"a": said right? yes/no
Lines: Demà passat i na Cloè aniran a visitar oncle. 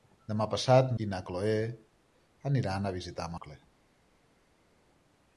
yes